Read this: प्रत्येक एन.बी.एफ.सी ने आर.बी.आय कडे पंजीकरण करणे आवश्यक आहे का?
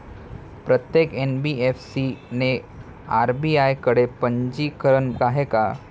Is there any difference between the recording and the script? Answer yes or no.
yes